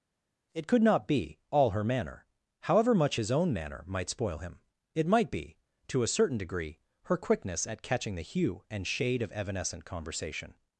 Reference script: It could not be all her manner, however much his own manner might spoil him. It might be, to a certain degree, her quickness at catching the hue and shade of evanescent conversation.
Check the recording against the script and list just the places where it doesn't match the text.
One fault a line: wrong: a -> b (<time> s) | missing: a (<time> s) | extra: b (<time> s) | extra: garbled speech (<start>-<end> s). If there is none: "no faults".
no faults